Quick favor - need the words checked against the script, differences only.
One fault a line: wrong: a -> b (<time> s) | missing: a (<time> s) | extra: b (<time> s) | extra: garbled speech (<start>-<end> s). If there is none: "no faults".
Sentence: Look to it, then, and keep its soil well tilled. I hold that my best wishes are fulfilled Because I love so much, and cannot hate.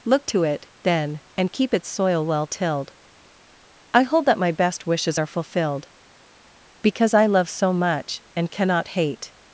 no faults